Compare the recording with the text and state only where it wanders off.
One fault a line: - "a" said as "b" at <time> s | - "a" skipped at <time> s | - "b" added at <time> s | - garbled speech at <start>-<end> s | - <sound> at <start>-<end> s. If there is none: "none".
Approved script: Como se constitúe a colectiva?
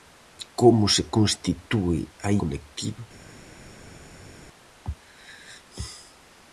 none